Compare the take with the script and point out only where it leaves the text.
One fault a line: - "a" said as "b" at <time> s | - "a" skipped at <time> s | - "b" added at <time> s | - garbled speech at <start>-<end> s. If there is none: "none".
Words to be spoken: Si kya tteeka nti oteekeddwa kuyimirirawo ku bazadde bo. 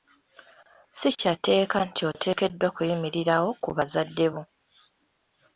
none